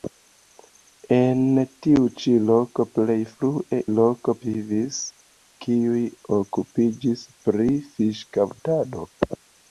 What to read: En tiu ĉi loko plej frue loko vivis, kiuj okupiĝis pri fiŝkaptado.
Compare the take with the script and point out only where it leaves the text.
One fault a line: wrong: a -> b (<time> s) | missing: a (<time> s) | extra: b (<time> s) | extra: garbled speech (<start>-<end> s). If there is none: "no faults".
no faults